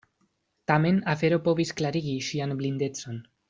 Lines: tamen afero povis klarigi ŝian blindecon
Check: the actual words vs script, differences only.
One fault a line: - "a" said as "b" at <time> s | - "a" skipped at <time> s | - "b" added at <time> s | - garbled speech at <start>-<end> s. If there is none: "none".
none